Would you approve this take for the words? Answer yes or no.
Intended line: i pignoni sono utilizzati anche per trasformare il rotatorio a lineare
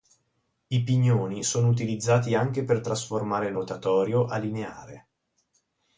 yes